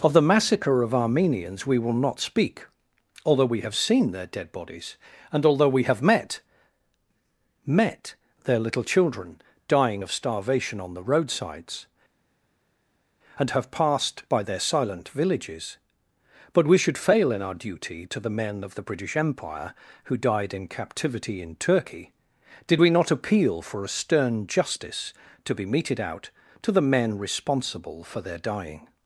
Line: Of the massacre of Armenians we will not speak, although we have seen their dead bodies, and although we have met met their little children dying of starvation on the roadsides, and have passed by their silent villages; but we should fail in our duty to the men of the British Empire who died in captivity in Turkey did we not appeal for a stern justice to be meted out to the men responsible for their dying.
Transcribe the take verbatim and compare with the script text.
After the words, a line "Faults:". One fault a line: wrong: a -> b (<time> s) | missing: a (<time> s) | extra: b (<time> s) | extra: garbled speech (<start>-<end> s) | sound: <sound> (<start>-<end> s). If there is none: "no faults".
Of the massacre of Armenians we will not speak, although we have seen their dead bodies, and although we have met met their little children dying of starvation on the roadsides, and have passed by their silent villages; but we should fail in our duty to the men of the British Empire who died in captivity in Turkey did we not appeal for a stern justice to be meted out to the men responsible for their dying.
Faults:
no faults